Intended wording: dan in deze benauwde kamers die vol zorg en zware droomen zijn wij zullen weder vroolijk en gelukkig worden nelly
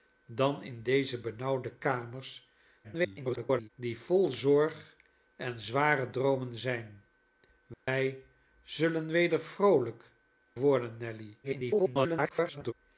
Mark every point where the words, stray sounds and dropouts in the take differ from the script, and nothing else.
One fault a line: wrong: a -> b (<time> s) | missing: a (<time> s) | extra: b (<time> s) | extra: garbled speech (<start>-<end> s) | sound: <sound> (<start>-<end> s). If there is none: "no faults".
extra: garbled speech (2.8-3.7 s)
sound: dropout (7.7-7.9 s)
missing: en gelukkig (10.1 s)
extra: garbled speech (11.4-12.7 s)